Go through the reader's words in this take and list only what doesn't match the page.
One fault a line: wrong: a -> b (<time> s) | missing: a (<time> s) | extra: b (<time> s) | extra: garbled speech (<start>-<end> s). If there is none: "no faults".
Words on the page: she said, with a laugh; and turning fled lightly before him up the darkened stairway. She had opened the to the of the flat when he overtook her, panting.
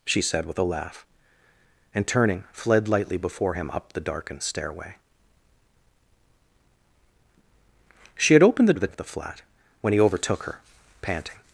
no faults